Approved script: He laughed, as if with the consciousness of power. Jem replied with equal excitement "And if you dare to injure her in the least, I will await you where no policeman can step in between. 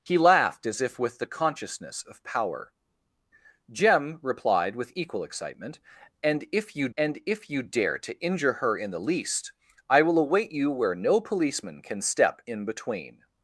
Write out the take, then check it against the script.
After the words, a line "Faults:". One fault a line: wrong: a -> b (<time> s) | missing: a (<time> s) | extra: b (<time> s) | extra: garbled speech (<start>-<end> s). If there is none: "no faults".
He laughed, as if with the consciousness of power. Jem replied with equal excitement "And if you and if you dare to injure her in the least, I will await you where no policeman can step in between.
Faults:
extra: and if you (7.0 s)